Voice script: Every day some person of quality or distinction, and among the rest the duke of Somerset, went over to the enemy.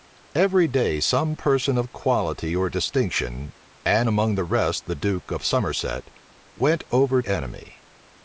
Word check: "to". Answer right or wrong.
wrong